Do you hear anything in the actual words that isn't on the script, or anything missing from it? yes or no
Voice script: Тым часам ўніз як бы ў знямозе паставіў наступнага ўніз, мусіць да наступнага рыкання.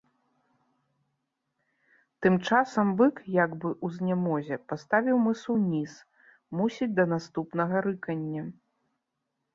yes